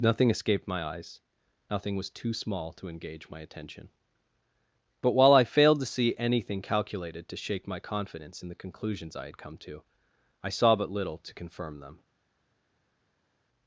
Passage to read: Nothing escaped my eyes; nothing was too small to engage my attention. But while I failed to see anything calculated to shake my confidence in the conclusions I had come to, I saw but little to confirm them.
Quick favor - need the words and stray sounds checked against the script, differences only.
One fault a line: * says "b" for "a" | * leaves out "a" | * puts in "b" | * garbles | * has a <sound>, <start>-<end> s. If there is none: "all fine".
all fine